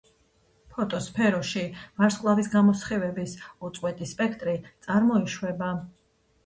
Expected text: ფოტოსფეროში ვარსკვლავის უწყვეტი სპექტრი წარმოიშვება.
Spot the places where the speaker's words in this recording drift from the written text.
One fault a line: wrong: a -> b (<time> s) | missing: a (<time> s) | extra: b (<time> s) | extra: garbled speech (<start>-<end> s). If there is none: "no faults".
extra: გამოსხივების (2.5 s)